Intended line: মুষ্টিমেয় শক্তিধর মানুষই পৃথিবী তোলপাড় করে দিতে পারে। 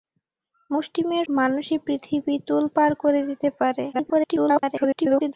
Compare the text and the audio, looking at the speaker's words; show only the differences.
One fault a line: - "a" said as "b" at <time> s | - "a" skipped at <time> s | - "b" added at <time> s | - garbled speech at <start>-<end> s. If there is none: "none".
- "শক্তিধর" skipped at 1.2 s
- garbled speech at 3.9-5.3 s